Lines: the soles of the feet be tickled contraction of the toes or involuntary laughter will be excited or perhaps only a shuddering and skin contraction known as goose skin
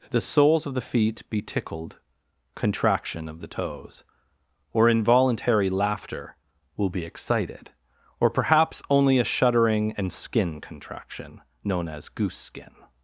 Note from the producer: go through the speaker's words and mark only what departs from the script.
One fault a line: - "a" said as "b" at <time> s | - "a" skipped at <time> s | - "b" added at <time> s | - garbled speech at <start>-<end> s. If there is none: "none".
none